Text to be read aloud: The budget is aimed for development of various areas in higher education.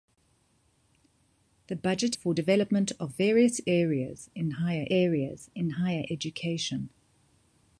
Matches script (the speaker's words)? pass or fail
fail